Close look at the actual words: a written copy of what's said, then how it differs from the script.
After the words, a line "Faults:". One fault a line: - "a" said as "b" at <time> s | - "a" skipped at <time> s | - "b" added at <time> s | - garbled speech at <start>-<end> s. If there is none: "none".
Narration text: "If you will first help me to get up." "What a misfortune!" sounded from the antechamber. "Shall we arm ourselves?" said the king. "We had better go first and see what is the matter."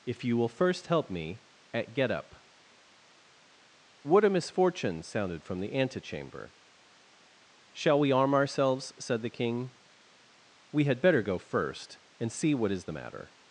"If you will first help me at get up." "What a misfortune!" sounded from the antechamber. "Shall we arm ourselves?" said the king. "We had better go first and see what is the matter."
Faults:
- "to" said as "at" at 1.7 s